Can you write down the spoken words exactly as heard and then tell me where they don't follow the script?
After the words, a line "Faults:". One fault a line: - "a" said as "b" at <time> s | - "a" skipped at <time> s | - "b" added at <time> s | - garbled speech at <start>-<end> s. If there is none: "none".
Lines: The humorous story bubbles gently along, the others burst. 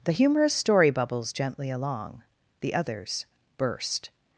The humorous story bubbles gently along, the others burst.
Faults:
none